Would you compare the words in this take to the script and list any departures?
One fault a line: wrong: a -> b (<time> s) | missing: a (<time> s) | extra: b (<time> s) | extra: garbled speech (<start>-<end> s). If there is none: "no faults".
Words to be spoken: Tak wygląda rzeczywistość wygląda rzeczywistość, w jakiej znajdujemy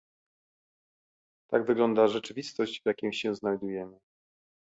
missing: wygląda rzeczywistość (2.8 s)
extra: się (3.1 s)